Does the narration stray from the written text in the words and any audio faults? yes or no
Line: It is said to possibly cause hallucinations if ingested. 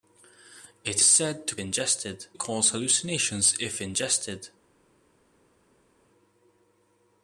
yes